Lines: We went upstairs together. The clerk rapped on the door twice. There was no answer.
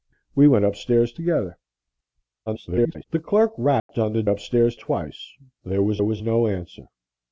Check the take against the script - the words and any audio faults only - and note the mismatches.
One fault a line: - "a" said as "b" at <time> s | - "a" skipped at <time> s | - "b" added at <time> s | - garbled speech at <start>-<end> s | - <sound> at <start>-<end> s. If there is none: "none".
- garbled speech at 2.5-3.0 s
- dropout at 3.8-3.9 s
- "door" said as "upstairs" at 4.3 s
- "was" added at 6.0 s